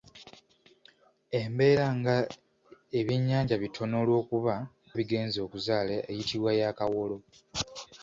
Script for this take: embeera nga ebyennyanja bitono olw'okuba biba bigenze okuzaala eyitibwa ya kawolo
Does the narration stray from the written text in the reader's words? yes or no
yes